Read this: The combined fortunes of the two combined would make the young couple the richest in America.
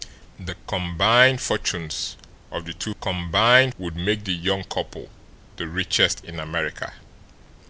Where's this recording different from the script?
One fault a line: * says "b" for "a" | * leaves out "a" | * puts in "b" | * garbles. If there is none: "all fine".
all fine